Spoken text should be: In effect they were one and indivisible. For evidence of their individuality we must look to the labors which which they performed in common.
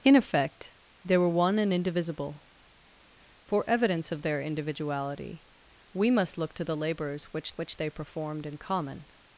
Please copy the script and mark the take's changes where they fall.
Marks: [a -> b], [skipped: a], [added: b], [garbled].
In effect they were one and indivisible. For evidence of their individuality we must look to the labors which which they performed in common.